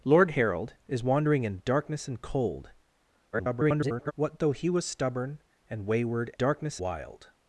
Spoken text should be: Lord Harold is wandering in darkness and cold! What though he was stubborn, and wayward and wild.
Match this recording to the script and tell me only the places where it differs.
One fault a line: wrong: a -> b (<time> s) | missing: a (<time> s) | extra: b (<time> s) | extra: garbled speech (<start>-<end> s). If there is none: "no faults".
extra: garbled speech (3.3-4.1 s)
wrong: and -> darkness (6.4 s)